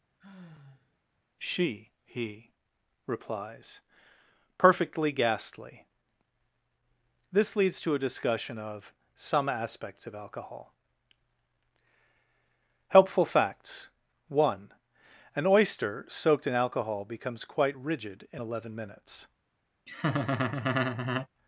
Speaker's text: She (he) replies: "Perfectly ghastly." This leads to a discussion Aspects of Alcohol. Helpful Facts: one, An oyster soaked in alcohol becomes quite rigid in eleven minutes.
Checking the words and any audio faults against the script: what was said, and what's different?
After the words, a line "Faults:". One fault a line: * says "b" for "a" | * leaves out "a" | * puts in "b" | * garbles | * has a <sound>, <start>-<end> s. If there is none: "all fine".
She (he) replies: "Perfectly ghastly." This leads to a discussion of: Some Aspects of Alcohol. Helpful Facts: one, An oyster soaked in alcohol becomes quite rigid in eleven minutes.
Faults:
* has a sigh, 0.2-1.0 s
* puts in "of Some"
* has a laugh, 19.9-21.3 s